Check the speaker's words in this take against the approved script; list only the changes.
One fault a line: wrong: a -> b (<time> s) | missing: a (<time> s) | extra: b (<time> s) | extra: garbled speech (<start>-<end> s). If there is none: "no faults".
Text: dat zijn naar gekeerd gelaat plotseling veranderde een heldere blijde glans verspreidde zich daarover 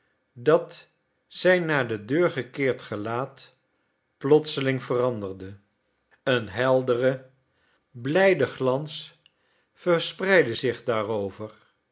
extra: de deur (1.9 s)